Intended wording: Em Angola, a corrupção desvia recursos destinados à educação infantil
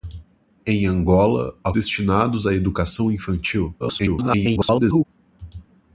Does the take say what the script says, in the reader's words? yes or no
no